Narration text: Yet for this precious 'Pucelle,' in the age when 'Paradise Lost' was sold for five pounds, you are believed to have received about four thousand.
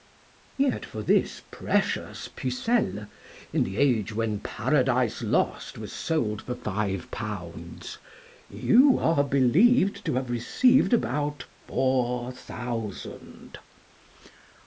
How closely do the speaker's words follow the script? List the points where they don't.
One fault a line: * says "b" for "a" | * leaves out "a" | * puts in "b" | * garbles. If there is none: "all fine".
all fine